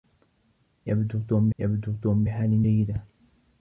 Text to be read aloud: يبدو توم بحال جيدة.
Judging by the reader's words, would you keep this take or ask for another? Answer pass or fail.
fail